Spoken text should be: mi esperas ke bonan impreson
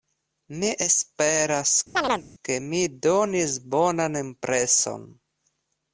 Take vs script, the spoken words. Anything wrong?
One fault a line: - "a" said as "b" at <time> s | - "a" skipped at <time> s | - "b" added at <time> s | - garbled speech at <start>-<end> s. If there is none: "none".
- "mi donis" added at 2.7 s